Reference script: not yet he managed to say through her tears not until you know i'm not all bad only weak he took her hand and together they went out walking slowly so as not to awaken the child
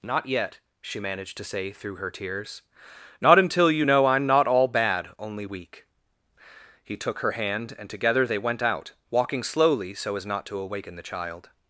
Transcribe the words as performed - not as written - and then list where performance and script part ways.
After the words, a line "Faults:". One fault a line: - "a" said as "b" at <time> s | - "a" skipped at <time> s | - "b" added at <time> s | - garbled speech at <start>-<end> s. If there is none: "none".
not yet she managed to say through her tears not until you know i'm not all bad only weak he took her hand and together they went out walking slowly so as not to awaken the child
Faults:
- "he" said as "she" at 0.8 s